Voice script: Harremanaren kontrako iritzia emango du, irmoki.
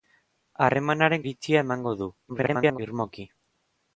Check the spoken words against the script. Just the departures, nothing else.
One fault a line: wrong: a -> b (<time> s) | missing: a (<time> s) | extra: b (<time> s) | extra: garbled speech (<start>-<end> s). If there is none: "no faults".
missing: kontrako (1.2 s)
extra: garbled speech (2.3-2.8 s)